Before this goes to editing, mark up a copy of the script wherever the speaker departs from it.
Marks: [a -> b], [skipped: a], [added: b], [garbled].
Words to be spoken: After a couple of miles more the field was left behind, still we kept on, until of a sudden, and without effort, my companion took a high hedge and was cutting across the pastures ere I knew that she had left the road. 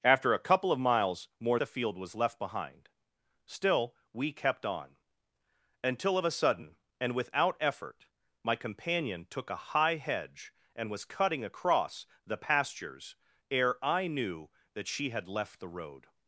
After a couple of miles more the field was left behind, still we kept on, until of a sudden, and without effort, my companion took a high hedge and was cutting across the pastures ere I knew that she had left the road.